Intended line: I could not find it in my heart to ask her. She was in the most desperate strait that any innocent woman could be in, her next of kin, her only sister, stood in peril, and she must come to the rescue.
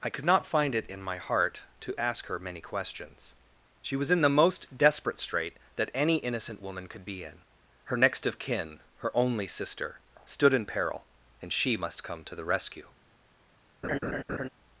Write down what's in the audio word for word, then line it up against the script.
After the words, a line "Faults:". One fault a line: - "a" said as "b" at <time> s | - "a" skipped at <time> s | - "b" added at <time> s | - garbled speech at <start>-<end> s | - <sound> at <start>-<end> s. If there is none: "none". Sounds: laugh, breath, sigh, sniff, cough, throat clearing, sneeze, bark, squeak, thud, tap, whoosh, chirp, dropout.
I could not find it in my heart to ask her many questions. She was in the most desperate strait that any innocent woman could be in, her next of kin, her only sister, stood in peril, and she must come to the rescue.
Faults:
- "many questions" added at 2.4 s
- laugh at 13.8-14.5 s